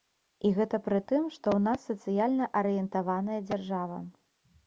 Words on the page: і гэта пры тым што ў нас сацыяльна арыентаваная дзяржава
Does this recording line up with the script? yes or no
yes